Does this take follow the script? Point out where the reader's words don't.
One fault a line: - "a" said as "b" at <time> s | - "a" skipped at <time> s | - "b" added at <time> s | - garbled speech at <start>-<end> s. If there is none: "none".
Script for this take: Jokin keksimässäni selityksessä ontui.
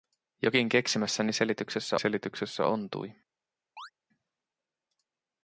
- "selityksessä" added at 2.0 s